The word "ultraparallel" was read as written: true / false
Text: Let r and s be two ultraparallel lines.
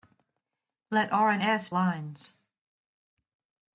false